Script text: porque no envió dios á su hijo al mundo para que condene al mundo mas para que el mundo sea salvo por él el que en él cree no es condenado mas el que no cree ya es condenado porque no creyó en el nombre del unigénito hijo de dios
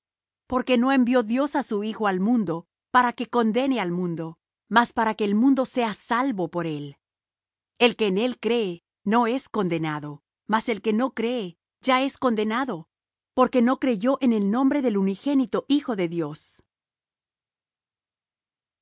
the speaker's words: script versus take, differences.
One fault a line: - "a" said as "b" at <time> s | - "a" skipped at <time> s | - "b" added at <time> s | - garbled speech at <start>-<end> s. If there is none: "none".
none